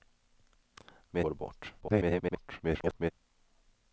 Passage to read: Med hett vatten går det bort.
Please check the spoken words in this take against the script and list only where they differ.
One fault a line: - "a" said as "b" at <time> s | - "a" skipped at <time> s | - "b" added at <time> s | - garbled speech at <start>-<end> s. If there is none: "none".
- "hett vatten" skipped at 1.2 s
- garbled speech at 1.8-3.1 s